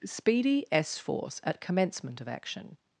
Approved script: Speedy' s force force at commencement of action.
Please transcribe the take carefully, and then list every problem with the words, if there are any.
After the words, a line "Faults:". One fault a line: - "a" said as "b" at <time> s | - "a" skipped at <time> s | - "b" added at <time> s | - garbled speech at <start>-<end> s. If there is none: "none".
Speedy' s force at commencement of action.
Faults:
- "force" skipped at 1.4 s